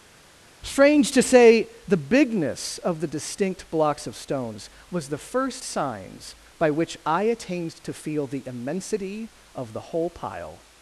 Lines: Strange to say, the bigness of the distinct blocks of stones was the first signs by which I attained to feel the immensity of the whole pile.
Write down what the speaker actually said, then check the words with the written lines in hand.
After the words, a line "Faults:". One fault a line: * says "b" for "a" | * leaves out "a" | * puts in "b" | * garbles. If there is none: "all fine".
Strange to say, the bigness of the distinct blocks of stones was the first signs by which I attained to feel the immensity of the whole pile.
Faults:
all fine